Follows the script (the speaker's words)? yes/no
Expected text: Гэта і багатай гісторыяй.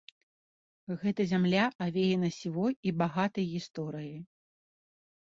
no